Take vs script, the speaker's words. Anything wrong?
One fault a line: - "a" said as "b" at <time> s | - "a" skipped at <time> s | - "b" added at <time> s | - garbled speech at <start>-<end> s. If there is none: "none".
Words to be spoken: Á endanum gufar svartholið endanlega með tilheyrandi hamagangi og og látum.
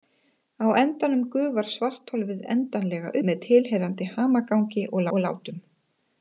none